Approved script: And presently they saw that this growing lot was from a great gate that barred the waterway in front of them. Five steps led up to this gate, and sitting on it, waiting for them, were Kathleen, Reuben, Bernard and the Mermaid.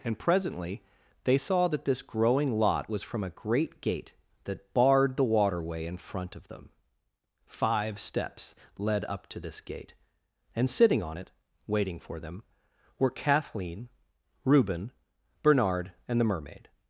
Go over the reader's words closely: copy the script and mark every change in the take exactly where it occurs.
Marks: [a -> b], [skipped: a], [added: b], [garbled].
And presently they saw that this growing lot was from a great gate that barred the waterway in front of them. Five steps led up to this gate, and sitting on it, waiting for them, were Kathleen, Reuben, Bernard and the Mermaid.